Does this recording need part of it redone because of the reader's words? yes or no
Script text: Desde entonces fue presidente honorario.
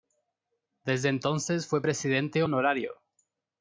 no